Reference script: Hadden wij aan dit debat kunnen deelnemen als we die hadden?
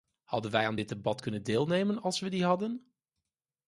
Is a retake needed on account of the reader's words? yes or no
no